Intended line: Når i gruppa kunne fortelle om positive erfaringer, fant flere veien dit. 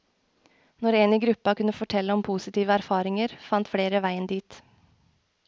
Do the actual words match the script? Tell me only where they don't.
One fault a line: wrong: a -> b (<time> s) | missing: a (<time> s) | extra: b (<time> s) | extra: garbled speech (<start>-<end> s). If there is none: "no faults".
extra: en (1.0 s)